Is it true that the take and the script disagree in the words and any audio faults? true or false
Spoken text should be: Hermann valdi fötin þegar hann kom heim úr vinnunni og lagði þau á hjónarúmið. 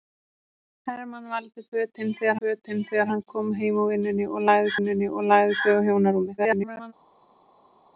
true